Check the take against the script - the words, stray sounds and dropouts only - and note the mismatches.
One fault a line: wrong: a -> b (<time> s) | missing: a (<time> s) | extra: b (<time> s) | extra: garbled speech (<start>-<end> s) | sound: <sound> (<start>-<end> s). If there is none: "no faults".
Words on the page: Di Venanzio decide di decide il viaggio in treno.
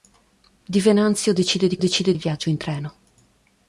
no faults